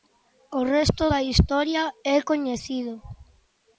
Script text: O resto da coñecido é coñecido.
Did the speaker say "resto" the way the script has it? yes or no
yes